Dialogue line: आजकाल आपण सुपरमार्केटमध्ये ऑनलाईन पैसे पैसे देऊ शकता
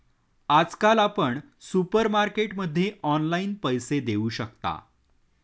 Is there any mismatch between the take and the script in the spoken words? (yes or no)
yes